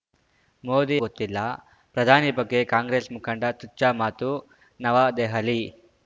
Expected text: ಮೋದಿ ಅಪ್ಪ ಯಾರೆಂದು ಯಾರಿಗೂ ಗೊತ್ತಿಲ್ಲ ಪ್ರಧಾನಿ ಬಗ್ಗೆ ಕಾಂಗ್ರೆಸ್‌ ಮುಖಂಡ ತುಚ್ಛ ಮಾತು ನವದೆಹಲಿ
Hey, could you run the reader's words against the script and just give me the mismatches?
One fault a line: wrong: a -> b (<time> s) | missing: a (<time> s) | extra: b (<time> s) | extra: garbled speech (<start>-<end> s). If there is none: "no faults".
missing: ಅಪ್ಪ ಯಾರೆಂದು ಯಾರಿಗೂ (0.9 s)